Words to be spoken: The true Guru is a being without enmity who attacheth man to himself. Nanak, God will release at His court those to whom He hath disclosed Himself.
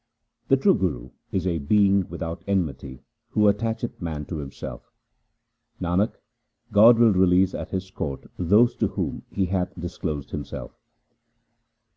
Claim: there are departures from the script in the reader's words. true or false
false